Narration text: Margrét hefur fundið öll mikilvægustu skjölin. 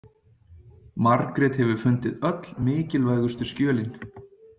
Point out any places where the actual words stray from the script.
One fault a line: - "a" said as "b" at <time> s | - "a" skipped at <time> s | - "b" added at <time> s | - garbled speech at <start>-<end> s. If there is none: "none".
none